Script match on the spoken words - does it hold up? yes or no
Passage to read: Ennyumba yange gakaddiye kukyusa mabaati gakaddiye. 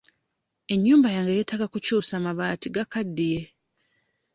no